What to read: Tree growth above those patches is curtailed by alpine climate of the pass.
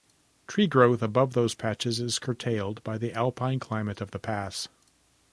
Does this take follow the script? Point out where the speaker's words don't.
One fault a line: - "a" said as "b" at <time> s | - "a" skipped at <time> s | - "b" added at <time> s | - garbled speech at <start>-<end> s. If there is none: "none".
- "the" added at 3.0 s